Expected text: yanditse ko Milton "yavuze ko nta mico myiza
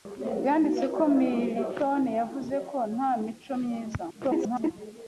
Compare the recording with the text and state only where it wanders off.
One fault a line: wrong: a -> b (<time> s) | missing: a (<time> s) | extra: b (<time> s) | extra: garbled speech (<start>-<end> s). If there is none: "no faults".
extra: garbled speech (4.1-4.7 s)